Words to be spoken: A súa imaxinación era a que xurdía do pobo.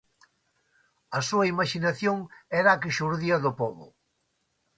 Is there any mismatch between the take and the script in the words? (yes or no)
no